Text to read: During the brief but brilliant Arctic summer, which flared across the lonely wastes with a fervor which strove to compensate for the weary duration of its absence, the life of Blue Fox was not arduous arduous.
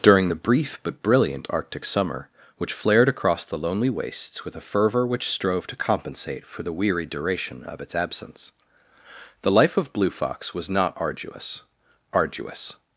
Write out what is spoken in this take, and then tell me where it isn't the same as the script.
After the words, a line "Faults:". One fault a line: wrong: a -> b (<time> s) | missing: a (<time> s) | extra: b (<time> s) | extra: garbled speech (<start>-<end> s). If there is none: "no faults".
During the brief but brilliant Arctic summer, which flared across the lonely wastes with a fervor which strove to compensate for the weary duration of its absence, the life of Blue Fox was not arduous arduous.
Faults:
no faults